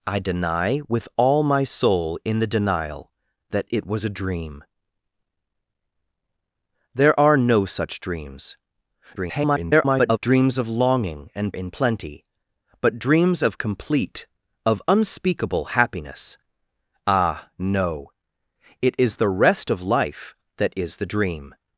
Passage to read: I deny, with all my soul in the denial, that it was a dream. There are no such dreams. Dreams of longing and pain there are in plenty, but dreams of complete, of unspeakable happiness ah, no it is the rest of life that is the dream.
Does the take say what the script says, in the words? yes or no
no